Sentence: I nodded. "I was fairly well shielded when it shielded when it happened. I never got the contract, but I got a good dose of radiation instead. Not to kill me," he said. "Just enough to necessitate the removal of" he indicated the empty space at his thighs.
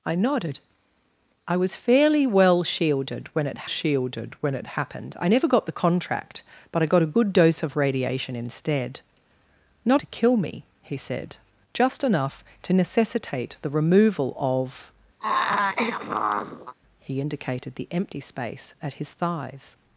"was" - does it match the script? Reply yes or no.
yes